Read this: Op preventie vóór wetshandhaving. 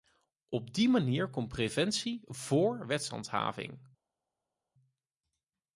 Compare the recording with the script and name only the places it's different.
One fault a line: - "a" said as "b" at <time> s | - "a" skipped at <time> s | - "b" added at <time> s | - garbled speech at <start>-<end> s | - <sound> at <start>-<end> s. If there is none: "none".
- "die manier komt" added at 0.7 s